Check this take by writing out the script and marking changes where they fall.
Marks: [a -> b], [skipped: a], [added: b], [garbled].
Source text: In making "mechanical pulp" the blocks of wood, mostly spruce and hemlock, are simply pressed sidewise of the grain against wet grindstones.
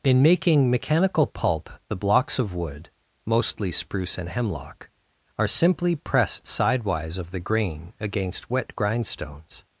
In making "mechanical pulp" the blocks of wood, mostly spruce and hemlock, are simply pressed sidewise of the grain against wet grindstones.